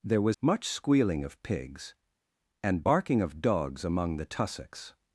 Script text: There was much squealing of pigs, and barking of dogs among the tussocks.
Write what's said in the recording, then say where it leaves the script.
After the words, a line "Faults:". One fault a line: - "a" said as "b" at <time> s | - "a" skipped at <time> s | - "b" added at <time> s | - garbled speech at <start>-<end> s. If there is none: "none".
There was much squealing of pigs, and barking of dogs among the tussocks.
Faults:
none